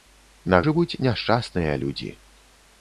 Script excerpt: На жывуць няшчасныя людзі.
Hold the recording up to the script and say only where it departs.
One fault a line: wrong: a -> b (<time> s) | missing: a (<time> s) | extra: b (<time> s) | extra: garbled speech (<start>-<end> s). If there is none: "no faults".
no faults